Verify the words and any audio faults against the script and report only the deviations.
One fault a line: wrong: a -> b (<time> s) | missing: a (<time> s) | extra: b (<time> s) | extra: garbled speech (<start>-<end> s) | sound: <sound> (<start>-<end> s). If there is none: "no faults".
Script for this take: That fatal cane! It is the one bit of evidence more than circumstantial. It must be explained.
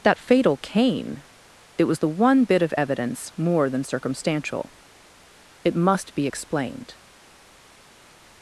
wrong: is -> was (1.8 s)